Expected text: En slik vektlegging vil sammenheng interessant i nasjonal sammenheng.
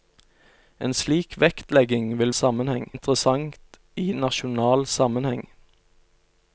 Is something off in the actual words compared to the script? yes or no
no